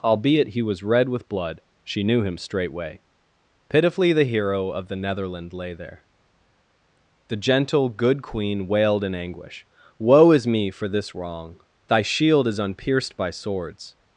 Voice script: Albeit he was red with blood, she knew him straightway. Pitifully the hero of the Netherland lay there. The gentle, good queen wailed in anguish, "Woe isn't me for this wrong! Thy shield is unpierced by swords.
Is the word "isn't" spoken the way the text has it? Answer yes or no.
no